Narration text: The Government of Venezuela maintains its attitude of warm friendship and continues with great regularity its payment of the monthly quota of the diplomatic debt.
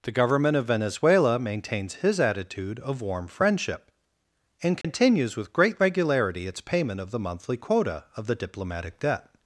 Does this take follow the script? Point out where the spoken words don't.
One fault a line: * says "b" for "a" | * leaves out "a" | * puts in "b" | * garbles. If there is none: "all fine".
* says "his" for "its"